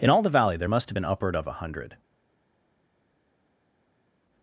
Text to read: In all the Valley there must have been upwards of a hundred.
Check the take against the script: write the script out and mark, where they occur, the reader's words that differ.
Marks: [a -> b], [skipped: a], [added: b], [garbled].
In all the Valley there must have been [upwards -> upward] of a hundred.